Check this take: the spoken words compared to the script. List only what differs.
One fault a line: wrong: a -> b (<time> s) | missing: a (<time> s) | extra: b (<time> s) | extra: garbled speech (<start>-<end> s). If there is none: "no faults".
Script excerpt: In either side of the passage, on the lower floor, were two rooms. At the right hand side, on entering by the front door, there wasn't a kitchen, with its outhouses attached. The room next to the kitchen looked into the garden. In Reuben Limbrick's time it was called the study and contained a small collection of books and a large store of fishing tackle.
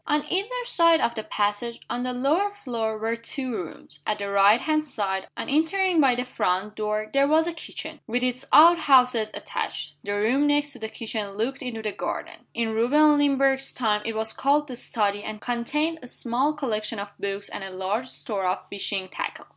wrong: In -> On (0.1 s)
wrong: wasn't -> was (7.3 s)